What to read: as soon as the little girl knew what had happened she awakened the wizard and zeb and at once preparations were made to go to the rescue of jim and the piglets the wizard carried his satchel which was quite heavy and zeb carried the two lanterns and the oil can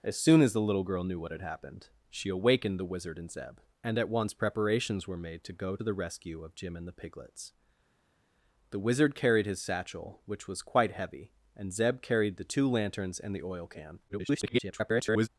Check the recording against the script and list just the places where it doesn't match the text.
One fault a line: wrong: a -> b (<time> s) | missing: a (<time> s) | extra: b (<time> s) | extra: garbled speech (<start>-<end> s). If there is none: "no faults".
missing: to (5.8 s)
extra: garbled speech (14.1-15.3 s)